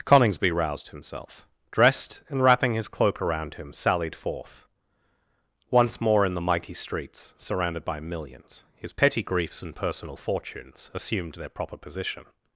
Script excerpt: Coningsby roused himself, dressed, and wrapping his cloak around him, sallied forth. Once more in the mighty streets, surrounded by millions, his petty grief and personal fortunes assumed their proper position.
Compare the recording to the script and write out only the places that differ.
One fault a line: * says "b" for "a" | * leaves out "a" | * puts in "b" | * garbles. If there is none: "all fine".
* says "griefs" for "grief"